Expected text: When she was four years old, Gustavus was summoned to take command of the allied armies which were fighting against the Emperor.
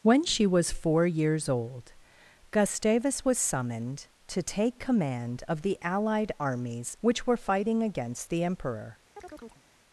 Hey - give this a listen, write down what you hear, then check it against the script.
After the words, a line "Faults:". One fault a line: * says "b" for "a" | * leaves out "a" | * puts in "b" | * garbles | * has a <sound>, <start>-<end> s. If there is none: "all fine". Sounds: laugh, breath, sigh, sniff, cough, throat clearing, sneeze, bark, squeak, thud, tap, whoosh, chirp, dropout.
When she was four years old, Gustavus was summoned to take command of the allied armies which were fighting against the Emperor.
Faults:
* has a chirp, 9.2-9.6 s